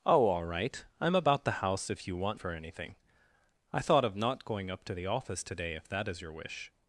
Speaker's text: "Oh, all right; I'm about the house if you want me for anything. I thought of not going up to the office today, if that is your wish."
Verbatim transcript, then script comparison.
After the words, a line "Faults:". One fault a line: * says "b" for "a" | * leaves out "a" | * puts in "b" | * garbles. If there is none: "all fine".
"Oh, all right; I'm about the house if you want for anything. I thought of not going up to the office today, if that is your wish."
Faults:
* leaves out "me"